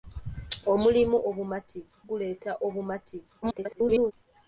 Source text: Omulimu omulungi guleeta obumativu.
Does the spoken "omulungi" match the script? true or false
false